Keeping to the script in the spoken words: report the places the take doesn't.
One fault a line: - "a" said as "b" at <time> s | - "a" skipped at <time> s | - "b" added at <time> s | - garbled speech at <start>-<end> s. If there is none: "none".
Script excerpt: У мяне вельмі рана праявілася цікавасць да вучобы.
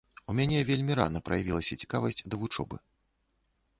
none